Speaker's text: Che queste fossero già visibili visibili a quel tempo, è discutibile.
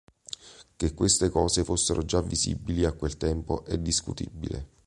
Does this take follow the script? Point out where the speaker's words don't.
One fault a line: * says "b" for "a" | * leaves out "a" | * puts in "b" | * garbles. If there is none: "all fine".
* puts in "cose"
* leaves out "visibili"